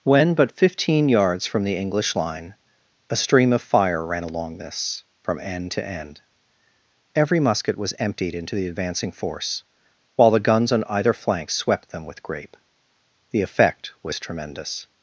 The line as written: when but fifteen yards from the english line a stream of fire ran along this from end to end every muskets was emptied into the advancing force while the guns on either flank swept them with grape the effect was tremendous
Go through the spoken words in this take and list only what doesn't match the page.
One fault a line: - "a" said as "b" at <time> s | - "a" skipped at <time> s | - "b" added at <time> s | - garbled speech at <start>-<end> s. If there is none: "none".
- "muskets" said as "musket" at 7.4 s